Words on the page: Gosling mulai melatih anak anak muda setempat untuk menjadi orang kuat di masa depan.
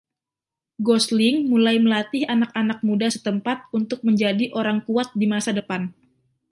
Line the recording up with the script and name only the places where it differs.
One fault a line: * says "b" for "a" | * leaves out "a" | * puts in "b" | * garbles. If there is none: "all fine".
all fine